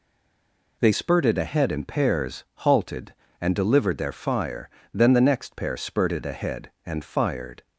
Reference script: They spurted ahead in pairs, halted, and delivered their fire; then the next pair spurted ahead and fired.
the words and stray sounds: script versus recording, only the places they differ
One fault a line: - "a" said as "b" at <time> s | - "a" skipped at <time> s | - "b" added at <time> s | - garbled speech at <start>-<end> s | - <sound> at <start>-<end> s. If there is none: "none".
none